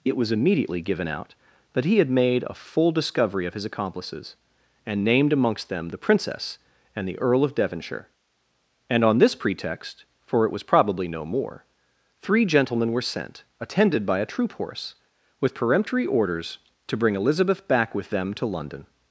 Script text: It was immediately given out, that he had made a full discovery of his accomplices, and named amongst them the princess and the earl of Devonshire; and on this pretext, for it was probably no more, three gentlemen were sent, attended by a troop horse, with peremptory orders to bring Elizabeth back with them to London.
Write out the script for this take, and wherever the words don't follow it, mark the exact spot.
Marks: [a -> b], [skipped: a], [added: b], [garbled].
It was immediately given out, that he had made a full discovery of his accomplices, and named amongst them the princess and the earl of Devonshire; and on this pretext, for it was probably no more, three gentlemen were sent, attended by a troop horse, with peremptory orders to bring Elizabeth back with them to London.